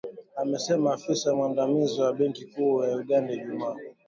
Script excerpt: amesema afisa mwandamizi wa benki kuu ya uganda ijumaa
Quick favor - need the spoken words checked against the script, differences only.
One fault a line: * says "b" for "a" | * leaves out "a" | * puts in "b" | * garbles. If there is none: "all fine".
all fine